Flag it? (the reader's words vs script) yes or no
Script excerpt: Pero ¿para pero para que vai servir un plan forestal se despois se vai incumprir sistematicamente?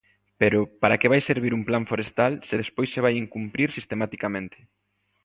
yes